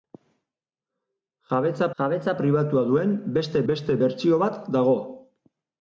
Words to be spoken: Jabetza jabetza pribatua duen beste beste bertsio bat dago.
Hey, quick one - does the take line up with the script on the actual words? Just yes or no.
yes